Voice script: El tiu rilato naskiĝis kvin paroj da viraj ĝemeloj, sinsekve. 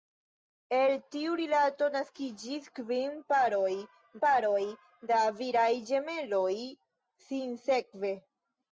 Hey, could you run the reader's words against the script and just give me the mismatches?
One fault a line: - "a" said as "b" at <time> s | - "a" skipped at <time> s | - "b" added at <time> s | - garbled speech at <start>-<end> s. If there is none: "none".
- "paroj" added at 4.3 s